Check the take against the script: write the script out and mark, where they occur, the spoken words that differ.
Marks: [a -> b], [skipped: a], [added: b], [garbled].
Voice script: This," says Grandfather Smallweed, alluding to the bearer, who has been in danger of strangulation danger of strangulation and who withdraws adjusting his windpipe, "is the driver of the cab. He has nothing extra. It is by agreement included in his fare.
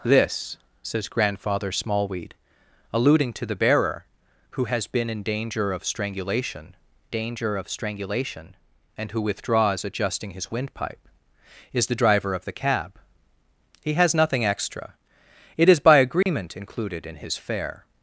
This," says Grandfather Smallweed, alluding to the bearer, who has been in danger of strangulation danger of strangulation and who withdraws adjusting his windpipe, "is the driver of the cab. He has nothing extra. It is by agreement included in his fare.